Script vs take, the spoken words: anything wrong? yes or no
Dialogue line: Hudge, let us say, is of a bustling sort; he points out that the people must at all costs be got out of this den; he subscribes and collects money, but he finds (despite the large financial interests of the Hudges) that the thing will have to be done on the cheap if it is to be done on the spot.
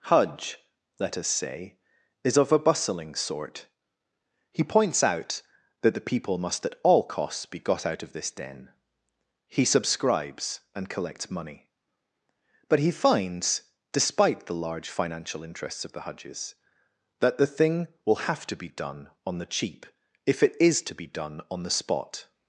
no